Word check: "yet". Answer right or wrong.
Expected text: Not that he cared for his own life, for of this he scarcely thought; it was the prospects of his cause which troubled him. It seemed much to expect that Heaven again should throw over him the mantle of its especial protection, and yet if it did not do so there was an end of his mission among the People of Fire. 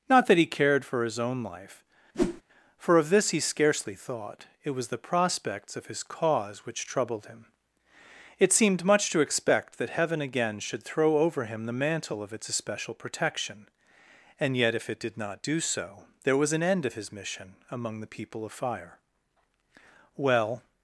right